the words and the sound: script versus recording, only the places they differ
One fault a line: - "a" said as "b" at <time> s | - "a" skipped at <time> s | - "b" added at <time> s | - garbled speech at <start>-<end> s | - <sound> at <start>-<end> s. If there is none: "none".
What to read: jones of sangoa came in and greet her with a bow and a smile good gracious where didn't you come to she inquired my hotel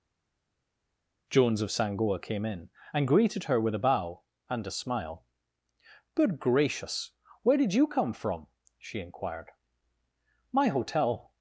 - "greet" said as "greeted" at 3.1 s
- "didn't" said as "did" at 7.6 s
- "to" said as "from" at 8.1 s